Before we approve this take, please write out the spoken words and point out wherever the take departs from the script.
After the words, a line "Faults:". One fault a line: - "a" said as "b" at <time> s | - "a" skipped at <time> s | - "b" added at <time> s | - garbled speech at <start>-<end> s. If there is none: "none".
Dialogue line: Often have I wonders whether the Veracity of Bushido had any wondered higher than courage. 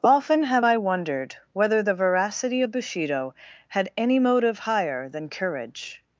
Often have I wondered whether the Veracity of Bushido had any motive higher than courage.
Faults:
- "wonders" said as "wondered" at 0.8 s
- "wondered" said as "motive" at 4.2 s